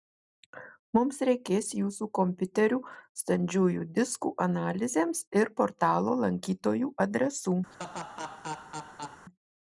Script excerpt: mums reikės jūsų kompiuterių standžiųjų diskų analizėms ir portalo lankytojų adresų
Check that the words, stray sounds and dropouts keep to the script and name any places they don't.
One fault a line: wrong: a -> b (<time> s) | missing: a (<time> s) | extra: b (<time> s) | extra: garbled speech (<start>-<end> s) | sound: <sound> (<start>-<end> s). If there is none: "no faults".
sound: laugh (7.7-9.2 s)